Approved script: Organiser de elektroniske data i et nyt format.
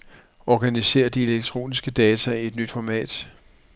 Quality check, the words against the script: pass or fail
pass